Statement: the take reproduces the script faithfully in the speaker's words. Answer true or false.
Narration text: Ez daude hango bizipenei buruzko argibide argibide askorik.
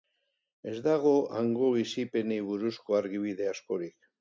false